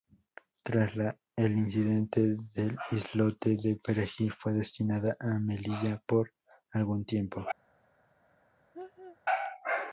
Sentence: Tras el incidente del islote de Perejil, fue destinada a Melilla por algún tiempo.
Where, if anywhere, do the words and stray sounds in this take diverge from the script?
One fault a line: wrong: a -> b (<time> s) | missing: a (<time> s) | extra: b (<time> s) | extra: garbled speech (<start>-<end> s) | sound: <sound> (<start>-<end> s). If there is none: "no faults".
sound: laugh (8.7-9.2 s)